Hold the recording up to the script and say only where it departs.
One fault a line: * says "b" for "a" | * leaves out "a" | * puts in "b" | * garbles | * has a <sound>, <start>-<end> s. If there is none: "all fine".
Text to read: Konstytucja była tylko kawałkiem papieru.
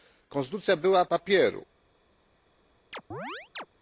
* leaves out "tylko kawałkiem"
* has a chirp, 2.9-3.7 s